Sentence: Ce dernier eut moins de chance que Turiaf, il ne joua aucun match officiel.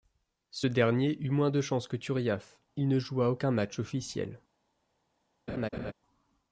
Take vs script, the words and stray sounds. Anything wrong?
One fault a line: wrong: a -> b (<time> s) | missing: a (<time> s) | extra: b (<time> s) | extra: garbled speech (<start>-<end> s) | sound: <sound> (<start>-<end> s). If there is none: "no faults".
sound: laugh (5.5-5.9 s)